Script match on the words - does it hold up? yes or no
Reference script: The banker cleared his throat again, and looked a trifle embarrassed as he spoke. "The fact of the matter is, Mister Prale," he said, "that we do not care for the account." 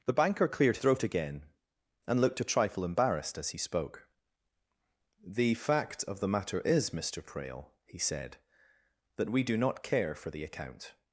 no